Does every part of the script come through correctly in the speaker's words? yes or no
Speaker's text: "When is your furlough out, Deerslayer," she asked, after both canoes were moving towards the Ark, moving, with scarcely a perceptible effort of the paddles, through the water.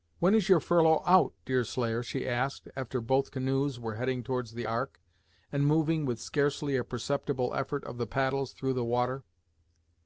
no